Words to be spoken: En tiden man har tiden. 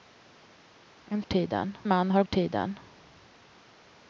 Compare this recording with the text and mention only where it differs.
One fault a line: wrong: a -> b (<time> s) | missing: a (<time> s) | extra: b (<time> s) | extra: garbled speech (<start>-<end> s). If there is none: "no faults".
no faults